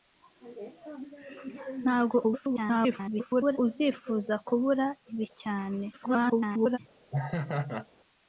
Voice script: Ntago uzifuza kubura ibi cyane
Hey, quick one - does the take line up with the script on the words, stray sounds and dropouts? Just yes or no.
no